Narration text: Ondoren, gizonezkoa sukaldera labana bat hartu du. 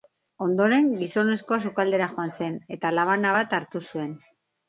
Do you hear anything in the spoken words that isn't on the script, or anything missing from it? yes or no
yes